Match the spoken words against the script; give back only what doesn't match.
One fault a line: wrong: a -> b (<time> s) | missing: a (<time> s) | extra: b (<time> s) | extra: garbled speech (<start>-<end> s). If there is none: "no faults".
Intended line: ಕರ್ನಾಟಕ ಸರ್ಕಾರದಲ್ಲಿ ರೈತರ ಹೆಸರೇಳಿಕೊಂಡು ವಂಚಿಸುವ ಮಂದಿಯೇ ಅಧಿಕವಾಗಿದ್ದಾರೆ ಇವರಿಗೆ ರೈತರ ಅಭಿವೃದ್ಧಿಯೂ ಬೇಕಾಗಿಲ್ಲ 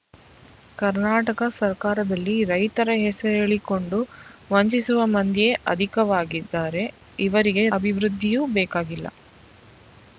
missing: ರೈತರ (7.6 s)